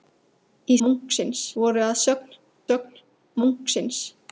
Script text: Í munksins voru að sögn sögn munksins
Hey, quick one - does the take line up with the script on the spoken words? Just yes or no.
yes